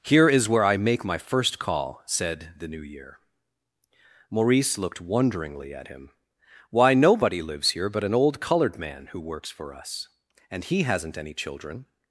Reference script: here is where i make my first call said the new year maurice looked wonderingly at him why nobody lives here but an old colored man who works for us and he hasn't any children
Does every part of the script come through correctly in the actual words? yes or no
yes